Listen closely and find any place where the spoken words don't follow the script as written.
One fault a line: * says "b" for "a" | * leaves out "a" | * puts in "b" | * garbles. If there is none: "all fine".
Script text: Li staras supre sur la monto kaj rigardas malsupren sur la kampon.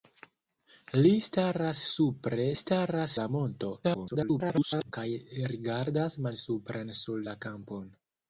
* says "staras" for "sur"
* garbles